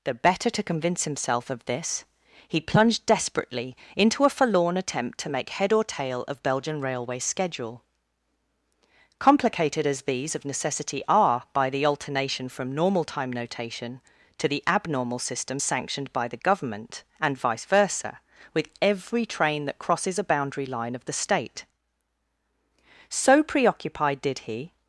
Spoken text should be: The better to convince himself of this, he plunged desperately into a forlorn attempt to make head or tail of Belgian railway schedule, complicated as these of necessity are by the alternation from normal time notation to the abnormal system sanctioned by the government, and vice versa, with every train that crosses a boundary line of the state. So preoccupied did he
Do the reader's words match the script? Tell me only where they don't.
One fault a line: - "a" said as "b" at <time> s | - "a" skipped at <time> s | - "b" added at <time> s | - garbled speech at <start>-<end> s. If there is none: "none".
none